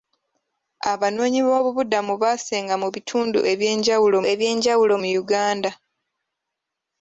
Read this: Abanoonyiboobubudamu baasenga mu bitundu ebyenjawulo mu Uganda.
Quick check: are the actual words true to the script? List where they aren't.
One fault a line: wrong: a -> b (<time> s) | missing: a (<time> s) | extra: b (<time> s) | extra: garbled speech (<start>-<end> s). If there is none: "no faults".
extra: ebyenjawulo (4.3 s)